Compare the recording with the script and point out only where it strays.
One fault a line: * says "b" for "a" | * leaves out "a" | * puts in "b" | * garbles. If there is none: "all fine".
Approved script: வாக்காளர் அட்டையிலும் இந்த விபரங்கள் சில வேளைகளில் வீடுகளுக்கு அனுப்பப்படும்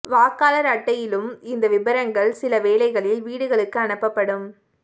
all fine